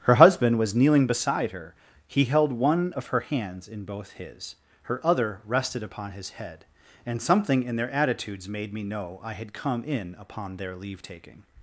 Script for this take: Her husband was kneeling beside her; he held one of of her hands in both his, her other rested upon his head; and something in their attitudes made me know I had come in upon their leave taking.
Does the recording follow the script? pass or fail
fail